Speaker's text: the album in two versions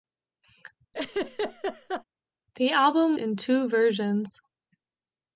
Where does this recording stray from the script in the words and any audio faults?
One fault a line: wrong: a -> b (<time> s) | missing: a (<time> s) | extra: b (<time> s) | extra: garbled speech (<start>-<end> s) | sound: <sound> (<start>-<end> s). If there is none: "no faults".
sound: laugh (0.9-2.0 s)